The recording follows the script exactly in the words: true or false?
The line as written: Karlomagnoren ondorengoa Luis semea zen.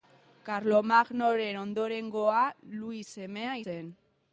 true